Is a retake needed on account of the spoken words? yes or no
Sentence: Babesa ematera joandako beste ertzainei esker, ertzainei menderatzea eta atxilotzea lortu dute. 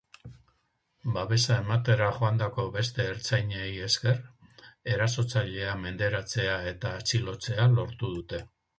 yes